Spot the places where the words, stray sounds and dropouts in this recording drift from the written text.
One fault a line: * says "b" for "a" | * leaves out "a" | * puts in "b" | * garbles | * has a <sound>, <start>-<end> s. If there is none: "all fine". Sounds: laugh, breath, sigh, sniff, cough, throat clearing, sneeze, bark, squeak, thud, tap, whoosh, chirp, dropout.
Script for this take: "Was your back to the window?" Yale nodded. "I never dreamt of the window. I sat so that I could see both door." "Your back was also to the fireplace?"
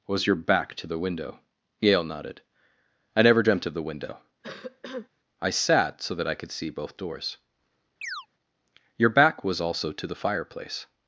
* has a cough, 4.4-5.1 s
* says "doors" for "door"
* has a chirp, 8.0-8.3 s